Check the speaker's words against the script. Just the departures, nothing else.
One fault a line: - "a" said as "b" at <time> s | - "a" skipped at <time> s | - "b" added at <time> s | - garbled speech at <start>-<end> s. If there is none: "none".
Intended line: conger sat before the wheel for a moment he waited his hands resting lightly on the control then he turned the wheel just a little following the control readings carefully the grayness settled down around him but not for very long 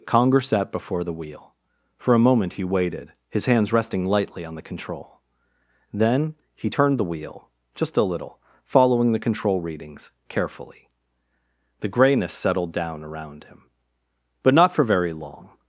none